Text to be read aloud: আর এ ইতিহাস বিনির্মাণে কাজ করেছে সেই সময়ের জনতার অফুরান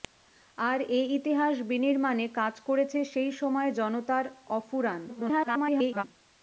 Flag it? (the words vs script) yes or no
yes